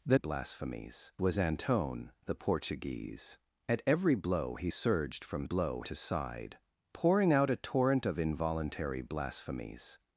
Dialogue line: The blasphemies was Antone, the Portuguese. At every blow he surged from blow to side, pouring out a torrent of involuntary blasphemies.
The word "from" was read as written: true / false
true